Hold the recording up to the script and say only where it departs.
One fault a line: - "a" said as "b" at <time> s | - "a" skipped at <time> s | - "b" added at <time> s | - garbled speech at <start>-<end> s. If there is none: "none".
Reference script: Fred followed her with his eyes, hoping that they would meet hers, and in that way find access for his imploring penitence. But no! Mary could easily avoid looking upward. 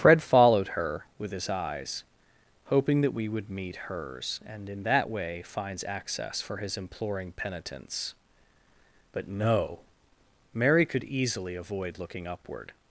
- "they" said as "we" at 3.1 s
- "find" said as "finds" at 5.5 s